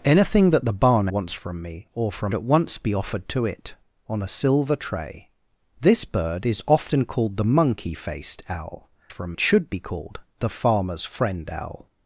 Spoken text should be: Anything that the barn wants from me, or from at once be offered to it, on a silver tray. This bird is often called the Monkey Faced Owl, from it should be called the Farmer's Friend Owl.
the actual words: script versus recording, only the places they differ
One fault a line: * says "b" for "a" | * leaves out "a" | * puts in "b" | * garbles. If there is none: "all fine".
all fine